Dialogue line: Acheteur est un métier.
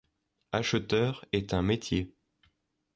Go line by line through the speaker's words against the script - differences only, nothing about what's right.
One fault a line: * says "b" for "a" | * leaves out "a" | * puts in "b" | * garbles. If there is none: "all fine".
all fine